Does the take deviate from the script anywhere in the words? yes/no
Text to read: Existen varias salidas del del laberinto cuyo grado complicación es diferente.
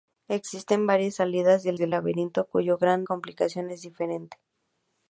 no